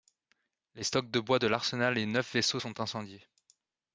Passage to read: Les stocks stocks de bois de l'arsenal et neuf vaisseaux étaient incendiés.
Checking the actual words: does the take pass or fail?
fail